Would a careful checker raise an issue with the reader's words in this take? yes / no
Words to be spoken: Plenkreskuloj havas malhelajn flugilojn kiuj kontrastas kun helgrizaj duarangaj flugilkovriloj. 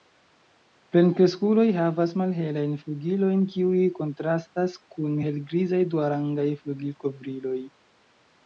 no